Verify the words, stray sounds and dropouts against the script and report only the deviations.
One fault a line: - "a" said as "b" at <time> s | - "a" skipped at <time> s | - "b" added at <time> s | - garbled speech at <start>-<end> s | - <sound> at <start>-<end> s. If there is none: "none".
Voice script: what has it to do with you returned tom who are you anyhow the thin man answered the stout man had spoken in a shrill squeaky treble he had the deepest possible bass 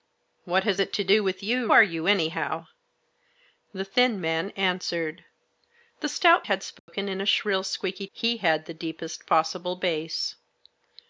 - "returned tom who" skipped at 1.7 s
- "man" skipped at 6.5 s
- dropout at 6.8-6.9 s
- "treble" skipped at 8.1 s